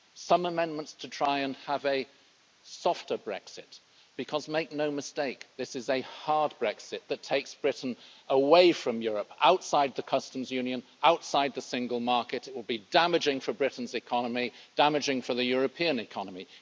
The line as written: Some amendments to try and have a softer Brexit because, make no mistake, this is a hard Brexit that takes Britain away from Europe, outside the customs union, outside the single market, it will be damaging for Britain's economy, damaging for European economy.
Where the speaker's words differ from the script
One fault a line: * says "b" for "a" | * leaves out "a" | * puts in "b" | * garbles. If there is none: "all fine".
* puts in "the"